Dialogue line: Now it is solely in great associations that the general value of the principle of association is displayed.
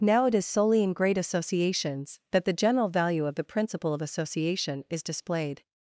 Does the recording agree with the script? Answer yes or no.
yes